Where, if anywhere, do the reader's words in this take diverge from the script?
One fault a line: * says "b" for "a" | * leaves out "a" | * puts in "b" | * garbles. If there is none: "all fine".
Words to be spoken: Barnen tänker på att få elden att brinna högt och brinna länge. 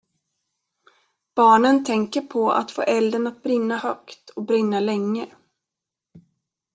all fine